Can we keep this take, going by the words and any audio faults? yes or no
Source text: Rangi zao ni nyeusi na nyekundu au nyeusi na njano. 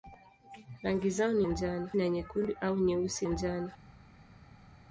no